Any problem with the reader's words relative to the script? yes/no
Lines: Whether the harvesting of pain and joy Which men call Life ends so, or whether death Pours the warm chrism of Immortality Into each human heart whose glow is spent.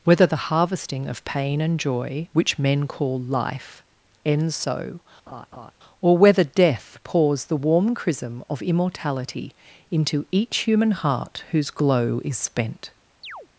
no